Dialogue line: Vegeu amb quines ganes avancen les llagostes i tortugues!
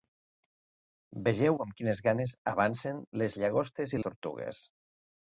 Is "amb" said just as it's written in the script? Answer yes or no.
yes